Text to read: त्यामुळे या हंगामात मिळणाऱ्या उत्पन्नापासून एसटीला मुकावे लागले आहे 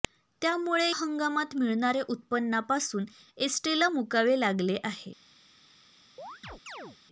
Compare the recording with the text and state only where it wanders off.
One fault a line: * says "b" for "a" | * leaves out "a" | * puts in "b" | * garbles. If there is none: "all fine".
* leaves out "या"